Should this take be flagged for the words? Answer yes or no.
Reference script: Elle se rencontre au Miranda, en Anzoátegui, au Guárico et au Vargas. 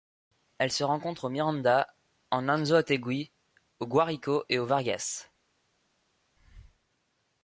no